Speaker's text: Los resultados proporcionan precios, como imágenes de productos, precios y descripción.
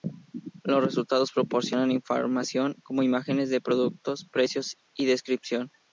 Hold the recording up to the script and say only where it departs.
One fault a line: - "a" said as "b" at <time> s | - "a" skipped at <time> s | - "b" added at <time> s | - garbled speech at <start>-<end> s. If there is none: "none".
- "precios" said as "información" at 1.9 s